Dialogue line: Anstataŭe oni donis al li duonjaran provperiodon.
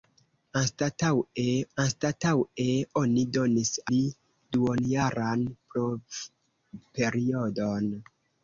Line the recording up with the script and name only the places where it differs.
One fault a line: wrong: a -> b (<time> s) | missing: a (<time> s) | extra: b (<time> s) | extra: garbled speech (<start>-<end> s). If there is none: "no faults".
extra: anstataŭe (1.8 s)
missing: al (3.7 s)